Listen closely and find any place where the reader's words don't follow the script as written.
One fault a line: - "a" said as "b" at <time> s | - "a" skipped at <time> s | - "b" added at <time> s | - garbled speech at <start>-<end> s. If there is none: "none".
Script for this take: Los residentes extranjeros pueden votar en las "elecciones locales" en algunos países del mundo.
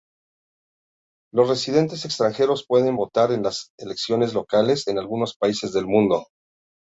none